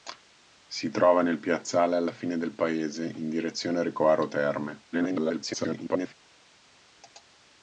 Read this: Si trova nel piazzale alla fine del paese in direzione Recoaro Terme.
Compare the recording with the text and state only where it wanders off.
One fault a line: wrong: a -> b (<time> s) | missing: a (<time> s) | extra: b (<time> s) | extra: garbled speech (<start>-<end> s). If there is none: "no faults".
extra: garbled speech (4.9-6.1 s)